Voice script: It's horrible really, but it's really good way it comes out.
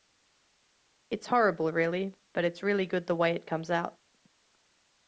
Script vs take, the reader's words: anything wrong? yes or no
yes